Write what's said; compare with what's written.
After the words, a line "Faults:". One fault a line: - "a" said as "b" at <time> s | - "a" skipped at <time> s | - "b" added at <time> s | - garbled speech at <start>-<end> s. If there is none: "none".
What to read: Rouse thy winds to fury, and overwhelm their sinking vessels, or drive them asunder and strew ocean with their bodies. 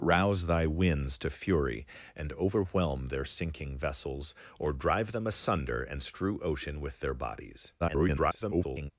Rouse thy winds to fury, and overwhelm their sinking vessels, or drive them asunder and strew ocean with their bodies. [garbled]
Faults:
- garbled speech at 7.8-8.9 s